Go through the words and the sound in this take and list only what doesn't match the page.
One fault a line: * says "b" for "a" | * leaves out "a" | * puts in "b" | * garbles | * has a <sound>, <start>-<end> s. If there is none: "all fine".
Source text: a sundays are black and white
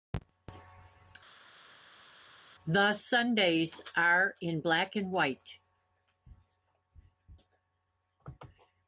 * says "the" for "a"
* puts in "in"